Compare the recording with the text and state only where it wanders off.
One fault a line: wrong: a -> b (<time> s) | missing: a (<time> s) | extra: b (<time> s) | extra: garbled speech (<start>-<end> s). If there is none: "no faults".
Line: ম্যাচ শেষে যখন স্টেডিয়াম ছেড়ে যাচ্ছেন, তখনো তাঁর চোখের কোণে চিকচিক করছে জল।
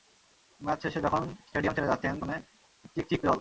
missing: তখনো তাঁর চোখের (2.1 s)
missing: করছে (3.2 s)